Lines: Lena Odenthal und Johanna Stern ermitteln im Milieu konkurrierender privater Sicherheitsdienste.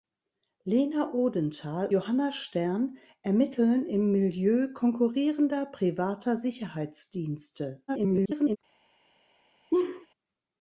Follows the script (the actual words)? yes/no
no